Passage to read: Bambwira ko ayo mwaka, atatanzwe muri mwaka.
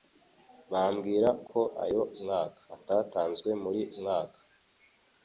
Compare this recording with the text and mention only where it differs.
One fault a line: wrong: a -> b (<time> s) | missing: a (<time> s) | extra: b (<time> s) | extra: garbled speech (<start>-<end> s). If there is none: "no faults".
no faults